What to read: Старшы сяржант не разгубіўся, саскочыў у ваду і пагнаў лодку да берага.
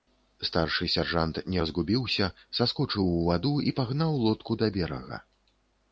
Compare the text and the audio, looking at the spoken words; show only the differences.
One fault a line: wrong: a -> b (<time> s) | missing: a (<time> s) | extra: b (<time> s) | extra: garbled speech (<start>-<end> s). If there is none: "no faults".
no faults